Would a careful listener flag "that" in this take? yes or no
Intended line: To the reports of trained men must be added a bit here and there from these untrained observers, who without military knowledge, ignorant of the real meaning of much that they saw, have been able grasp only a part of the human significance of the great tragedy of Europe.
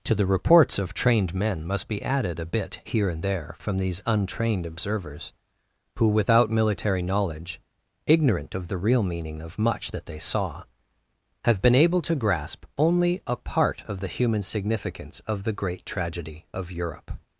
no